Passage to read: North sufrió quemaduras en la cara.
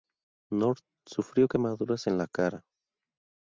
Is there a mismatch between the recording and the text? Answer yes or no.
no